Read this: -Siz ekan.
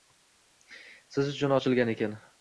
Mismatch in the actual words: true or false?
true